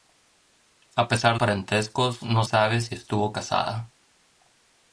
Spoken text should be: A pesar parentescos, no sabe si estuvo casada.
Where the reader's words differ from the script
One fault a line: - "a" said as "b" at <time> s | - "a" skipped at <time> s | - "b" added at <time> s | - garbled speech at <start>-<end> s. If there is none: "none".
none